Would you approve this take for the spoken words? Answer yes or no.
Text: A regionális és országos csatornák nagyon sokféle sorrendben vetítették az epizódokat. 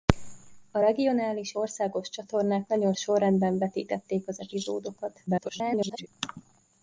no